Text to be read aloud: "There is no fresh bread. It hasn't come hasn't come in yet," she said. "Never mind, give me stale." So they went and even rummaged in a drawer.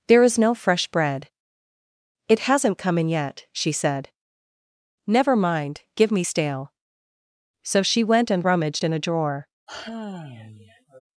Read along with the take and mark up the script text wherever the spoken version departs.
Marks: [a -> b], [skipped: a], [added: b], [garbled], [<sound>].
"There is no fresh bread. It hasn't come [skipped: hasn't come] in yet," she said. "Never mind, give me stale." So [they -> she] went and [skipped: even] rummaged in a drawer. [sigh]